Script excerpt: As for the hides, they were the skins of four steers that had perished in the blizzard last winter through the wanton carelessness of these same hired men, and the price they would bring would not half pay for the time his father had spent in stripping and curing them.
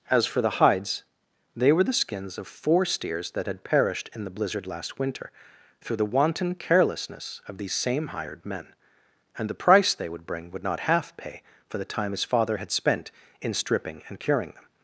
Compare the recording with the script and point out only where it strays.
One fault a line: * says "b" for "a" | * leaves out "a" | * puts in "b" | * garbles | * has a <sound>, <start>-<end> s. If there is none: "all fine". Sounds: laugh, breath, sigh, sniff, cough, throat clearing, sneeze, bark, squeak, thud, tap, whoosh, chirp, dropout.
all fine